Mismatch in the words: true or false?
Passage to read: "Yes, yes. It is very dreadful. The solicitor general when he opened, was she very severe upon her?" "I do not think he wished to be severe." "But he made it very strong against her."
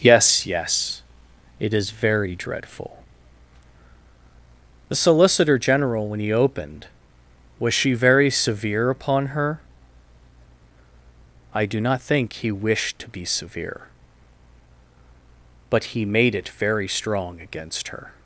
false